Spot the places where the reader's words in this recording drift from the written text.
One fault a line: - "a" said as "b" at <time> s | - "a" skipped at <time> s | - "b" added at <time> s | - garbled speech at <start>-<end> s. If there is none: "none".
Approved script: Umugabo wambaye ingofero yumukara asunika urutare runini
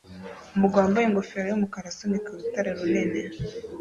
none